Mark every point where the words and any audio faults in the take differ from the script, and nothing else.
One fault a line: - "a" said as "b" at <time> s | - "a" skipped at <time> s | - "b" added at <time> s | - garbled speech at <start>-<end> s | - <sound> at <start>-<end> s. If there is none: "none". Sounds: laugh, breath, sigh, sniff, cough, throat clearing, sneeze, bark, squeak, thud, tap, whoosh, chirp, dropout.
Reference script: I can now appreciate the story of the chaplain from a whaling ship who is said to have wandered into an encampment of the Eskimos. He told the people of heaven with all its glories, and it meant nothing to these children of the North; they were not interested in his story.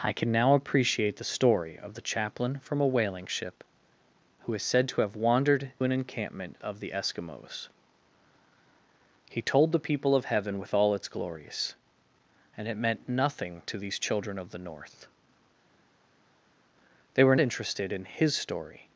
- "into" skipped at 5.7 s
- "not" skipped at 17.4 s